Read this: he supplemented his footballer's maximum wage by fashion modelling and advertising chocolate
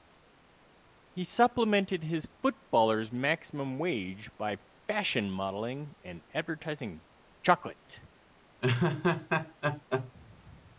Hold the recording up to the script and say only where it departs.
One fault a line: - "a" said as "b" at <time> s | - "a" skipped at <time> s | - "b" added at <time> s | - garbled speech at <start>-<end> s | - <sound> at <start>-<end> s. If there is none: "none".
- laugh at 8.6-10.1 s